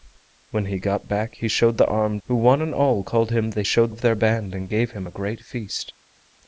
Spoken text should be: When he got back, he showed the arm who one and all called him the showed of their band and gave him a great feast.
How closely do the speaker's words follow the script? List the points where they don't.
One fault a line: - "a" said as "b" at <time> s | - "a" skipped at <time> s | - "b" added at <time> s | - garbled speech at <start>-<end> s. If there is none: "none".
none